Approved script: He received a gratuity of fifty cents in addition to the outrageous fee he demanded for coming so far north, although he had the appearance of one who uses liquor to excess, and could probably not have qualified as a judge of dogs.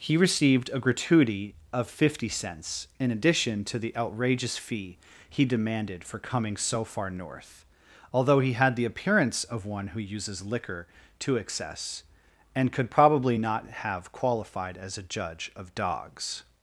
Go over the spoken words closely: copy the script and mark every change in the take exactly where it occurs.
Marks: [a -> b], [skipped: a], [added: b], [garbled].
He received a gratuity of fifty cents in addition to the outrageous fee he demanded for coming so far north, although he had the appearance of one who uses liquor to excess, and could probably not have qualified as a judge of dogs.